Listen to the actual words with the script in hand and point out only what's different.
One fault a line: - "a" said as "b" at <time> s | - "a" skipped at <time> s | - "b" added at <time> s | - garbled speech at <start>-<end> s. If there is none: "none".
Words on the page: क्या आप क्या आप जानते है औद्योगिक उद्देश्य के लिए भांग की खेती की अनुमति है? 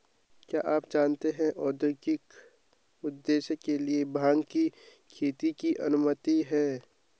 - "क्या आप" skipped at 0.8 s